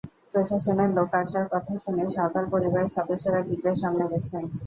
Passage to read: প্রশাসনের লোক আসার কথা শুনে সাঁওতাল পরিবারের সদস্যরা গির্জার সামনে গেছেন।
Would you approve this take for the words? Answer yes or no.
yes